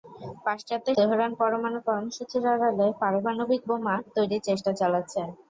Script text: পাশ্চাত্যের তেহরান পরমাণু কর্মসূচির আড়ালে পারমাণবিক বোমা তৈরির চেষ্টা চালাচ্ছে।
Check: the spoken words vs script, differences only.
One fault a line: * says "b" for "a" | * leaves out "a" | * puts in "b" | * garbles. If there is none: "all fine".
all fine